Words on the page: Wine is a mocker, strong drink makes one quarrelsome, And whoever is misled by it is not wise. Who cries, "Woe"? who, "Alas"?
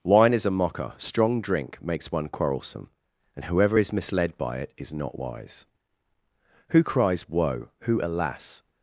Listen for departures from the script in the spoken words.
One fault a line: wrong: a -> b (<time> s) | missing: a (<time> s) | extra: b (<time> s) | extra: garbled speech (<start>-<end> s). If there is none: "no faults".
no faults